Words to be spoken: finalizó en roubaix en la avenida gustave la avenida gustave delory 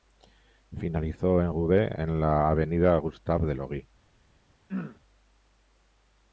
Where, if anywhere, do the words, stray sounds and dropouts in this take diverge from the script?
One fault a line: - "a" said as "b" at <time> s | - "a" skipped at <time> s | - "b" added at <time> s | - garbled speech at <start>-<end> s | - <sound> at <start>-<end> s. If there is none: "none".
- "la avenida gustave" skipped at 3.5 s
- throat clearing at 4.7-5.0 s